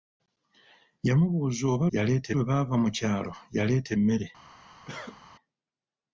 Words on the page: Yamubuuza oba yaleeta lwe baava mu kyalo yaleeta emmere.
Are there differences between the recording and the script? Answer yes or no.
no